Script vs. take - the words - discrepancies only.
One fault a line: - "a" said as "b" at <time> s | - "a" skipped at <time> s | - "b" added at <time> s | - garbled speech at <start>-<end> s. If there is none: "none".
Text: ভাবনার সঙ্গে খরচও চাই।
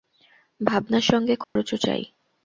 none